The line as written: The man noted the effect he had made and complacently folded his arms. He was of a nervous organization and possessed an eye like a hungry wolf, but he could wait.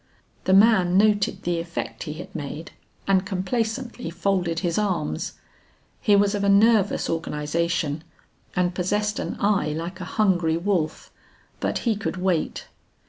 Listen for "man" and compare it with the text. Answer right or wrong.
right